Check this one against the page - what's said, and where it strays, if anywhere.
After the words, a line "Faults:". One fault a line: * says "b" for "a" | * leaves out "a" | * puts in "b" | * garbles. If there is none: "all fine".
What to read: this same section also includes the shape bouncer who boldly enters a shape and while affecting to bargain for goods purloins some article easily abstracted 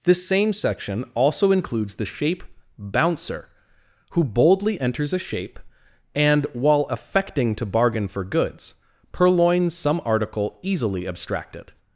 this same section also includes the shape bouncer who boldly enters a shape and while affecting to bargain for goods purloins some article easily abstracted
Faults:
all fine